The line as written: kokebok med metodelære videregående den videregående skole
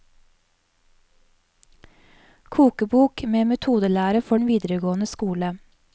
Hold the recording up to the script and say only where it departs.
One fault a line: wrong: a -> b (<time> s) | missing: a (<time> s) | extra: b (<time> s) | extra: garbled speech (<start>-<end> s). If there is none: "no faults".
wrong: videregående -> for (4.2 s)